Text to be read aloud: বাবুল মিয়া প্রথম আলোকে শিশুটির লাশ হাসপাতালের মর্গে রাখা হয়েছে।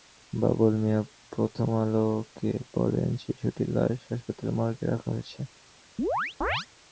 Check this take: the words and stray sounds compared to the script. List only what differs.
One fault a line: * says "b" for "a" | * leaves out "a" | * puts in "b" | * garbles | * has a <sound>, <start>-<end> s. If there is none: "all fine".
* puts in "বলেন"
* has a chirp, 6.0-6.7 s